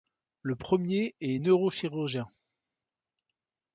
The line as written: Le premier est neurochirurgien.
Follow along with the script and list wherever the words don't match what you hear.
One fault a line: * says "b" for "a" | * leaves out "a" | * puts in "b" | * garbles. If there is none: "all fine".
all fine